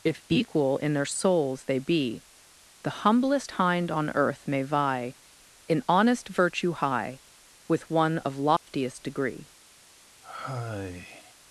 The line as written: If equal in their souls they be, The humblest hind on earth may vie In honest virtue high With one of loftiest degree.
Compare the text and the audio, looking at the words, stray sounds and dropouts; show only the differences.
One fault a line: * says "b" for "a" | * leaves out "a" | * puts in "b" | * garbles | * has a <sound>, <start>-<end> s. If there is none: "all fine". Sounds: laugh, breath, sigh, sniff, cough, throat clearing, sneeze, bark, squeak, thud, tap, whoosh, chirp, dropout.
* has a dropout, 8.6-8.7 s
* has a sigh, 10.2-11.3 s